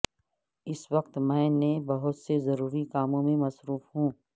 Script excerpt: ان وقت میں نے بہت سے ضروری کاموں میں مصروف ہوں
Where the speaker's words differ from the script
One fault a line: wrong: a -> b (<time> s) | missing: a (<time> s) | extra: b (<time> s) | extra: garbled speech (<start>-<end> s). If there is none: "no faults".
wrong: ان -> اس (0.7 s)